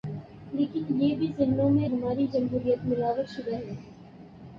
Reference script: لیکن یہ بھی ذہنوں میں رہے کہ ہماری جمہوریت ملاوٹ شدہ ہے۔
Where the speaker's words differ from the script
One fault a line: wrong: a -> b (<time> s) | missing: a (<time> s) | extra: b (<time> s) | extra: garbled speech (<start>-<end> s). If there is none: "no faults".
missing: رہے کہ (1.9 s)